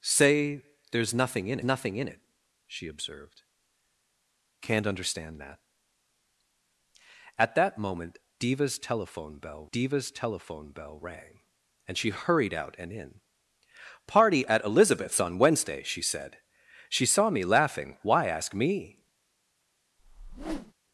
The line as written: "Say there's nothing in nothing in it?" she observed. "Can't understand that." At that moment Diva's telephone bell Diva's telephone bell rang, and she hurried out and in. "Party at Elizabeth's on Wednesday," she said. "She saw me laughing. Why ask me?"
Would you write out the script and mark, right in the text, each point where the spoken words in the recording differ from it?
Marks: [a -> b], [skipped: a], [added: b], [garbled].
"Say there's nothing in nothing in it?" she observed. "Can't understand that." At that moment Diva's telephone bell Diva's telephone bell rang, and she hurried out and in. "Party at Elizabeth's on Wednesday," she said. "She saw me laughing. Why ask me?"